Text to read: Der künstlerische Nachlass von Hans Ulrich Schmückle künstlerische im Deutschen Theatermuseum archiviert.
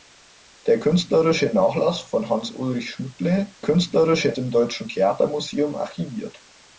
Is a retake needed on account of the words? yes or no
no